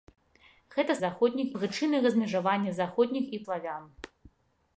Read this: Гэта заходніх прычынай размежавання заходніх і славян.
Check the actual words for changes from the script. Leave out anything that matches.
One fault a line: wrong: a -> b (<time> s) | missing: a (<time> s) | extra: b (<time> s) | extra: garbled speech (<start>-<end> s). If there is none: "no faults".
no faults